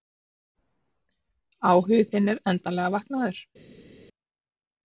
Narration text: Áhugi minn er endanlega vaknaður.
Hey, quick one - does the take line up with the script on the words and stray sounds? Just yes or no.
no